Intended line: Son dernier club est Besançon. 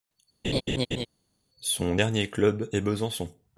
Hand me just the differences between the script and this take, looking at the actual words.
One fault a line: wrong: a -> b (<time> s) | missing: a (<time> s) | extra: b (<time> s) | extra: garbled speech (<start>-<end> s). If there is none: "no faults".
no faults